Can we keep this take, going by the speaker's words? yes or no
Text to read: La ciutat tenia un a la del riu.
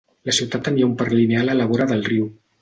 no